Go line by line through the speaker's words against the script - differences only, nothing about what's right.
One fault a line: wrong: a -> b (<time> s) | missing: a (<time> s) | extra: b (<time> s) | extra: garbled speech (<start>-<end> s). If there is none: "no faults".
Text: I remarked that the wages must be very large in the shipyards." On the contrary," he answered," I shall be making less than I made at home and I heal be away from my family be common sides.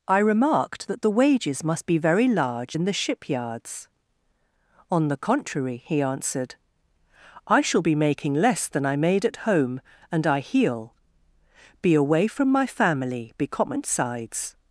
no faults